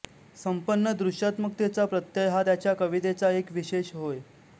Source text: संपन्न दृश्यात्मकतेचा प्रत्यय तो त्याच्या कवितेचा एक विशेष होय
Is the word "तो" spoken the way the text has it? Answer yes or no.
no